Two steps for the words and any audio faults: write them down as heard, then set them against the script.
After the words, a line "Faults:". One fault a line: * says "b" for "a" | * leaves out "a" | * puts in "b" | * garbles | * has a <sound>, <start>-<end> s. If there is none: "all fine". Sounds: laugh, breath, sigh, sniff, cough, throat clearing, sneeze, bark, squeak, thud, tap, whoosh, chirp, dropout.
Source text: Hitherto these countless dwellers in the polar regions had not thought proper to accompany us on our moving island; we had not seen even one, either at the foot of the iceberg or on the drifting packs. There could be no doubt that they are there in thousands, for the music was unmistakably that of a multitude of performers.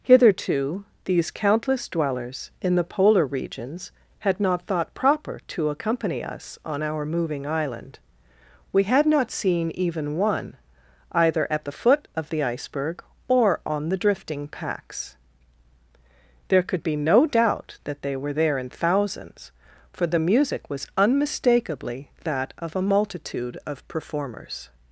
Hitherto these countless dwellers in the polar regions had not thought proper to accompany us on our moving island; we had not seen even one, either at the foot of the iceberg or on the drifting packs. There could be no doubt that they were there in thousands, for the music was unmistakably that of a multitude of performers.
Faults:
* says "were" for "are"